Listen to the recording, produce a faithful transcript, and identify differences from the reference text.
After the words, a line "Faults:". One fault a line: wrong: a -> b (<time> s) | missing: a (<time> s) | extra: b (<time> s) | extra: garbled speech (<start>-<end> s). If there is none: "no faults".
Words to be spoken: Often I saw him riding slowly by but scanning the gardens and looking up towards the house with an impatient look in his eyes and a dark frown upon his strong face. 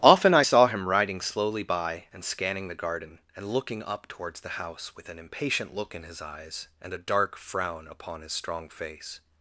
Often I saw him riding slowly by and scanning the garden and looking up towards the house with an impatient look in his eyes and a dark frown upon his strong face.
Faults:
wrong: but -> and (2.1 s)
wrong: gardens -> garden (2.7 s)